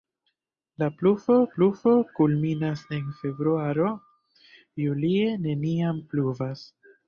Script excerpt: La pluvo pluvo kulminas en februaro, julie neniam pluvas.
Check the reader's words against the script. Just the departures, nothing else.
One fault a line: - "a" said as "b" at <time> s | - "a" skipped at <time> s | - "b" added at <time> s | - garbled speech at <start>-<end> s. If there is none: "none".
none